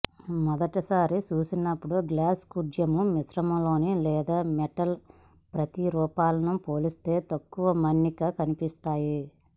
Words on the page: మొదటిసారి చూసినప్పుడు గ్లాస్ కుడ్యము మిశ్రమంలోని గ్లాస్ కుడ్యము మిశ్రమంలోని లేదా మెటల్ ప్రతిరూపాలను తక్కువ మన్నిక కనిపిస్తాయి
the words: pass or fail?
fail